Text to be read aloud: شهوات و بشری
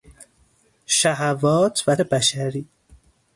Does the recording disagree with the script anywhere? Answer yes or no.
no